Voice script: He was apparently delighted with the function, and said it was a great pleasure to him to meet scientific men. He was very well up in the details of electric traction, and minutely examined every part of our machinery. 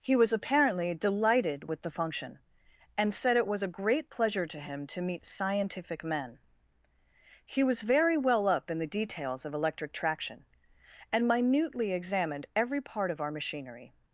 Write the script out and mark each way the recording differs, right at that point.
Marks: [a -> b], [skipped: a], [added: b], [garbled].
He was apparently delighted with the function, and said it was a great pleasure to him to meet scientific men. He was very well up in the details of electric traction, and minutely examined every part of our machinery.